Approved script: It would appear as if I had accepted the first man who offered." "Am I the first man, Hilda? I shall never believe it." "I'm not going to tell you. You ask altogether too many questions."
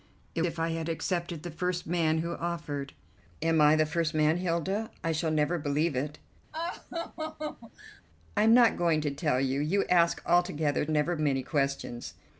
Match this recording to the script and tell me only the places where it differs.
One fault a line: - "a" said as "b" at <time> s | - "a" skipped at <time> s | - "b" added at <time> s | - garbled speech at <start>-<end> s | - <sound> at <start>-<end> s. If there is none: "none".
- "would appear as" skipped at 0.4 s
- laugh at 6.5-8.0 s
- "too" said as "never" at 10.9 s